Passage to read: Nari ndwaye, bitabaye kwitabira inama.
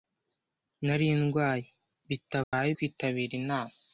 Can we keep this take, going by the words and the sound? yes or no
no